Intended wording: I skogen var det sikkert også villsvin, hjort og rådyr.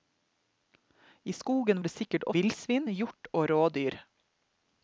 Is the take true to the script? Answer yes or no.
no